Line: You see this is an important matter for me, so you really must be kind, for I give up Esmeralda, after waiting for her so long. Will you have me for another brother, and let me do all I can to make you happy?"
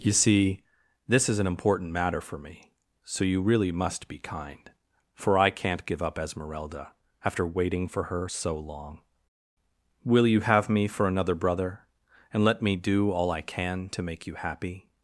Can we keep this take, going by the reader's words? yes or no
no